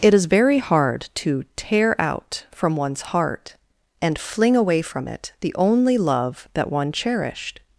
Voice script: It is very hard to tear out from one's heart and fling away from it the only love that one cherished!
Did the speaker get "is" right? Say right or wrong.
right